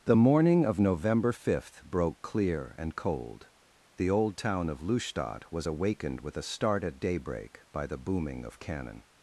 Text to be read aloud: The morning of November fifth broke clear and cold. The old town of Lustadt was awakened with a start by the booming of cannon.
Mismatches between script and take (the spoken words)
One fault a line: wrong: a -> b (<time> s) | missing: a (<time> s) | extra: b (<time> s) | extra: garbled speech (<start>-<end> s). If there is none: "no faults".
extra: at daybreak (6.8 s)